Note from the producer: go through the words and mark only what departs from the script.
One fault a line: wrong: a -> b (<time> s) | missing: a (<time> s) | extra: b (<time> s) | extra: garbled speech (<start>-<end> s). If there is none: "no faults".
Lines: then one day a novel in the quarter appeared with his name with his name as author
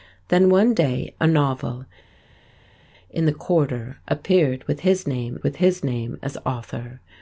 no faults